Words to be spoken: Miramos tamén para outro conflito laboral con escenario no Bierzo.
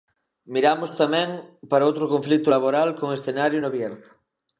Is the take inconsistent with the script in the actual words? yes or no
no